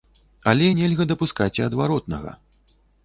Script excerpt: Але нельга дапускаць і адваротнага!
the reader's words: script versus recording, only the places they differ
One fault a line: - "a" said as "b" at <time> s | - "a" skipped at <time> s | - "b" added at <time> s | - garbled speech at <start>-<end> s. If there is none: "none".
none